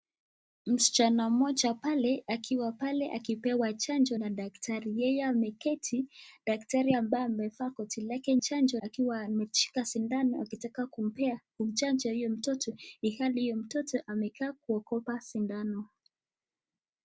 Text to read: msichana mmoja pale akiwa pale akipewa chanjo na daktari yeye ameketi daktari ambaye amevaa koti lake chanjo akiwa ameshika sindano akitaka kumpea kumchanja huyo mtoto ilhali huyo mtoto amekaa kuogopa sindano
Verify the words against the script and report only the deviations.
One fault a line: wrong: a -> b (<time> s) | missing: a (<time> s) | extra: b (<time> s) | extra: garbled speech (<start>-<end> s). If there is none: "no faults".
no faults